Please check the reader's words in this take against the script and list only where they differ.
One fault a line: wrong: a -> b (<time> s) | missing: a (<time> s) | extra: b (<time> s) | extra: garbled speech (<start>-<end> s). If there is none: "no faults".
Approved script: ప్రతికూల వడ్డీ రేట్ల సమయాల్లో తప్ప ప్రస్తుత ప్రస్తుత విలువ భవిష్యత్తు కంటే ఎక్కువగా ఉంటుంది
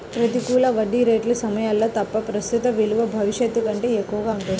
missing: ప్రస్తుత (2.7 s)